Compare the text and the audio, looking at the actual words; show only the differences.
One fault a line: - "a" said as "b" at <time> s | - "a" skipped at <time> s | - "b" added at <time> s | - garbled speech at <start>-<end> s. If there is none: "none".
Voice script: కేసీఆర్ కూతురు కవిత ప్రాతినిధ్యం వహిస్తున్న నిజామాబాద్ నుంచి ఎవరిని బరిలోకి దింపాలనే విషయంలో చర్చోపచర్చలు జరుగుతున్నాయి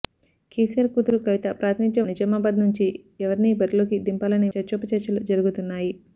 - "వహిస్తున్న" skipped at 2.1 s
- "విషయంలో" skipped at 4.5 s